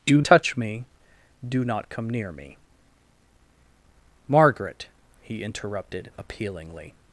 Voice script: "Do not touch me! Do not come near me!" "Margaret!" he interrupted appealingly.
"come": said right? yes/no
yes